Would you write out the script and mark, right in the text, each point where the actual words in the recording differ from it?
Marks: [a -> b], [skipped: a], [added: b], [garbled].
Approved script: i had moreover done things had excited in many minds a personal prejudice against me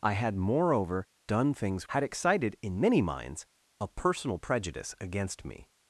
i had moreover done things had excited in many minds a personal prejudice against me